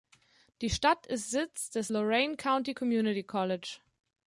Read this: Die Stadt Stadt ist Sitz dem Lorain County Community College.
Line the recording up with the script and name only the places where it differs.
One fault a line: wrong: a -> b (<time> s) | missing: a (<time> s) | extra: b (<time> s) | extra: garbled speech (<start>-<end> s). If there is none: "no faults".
missing: Stadt (1.1 s)
wrong: dem -> des (1.7 s)